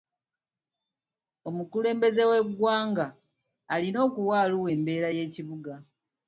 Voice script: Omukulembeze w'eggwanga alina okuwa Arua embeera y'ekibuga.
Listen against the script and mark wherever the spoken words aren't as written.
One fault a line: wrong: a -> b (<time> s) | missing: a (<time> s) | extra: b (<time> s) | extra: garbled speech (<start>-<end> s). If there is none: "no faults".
no faults